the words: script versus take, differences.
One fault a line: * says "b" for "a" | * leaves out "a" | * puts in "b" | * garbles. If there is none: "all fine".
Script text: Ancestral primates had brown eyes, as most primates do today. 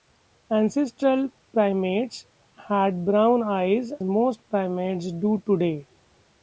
* leaves out "as"